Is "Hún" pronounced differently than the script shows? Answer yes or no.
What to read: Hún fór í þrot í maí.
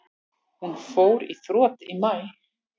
no